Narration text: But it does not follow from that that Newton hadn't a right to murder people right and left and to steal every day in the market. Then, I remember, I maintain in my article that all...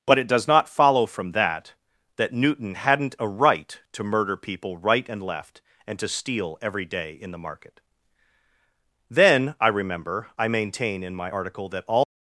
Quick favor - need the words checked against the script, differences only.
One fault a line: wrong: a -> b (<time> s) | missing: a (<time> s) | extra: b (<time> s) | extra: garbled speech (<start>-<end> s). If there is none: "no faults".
no faults